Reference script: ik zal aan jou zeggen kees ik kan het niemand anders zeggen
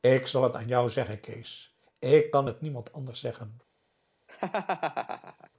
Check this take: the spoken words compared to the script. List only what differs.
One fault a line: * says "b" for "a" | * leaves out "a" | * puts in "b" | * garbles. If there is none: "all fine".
* puts in "het"